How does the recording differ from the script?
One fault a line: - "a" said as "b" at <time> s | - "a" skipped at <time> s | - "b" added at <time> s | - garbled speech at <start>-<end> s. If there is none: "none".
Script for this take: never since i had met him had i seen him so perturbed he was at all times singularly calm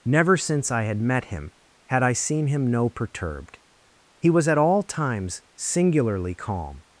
- "so" said as "no" at 2.6 s